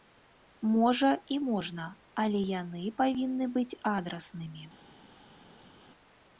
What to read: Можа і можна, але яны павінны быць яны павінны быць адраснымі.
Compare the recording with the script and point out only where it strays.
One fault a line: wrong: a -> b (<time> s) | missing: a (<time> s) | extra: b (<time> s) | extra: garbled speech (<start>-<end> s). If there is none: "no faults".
missing: яны павінны быць (3.7 s)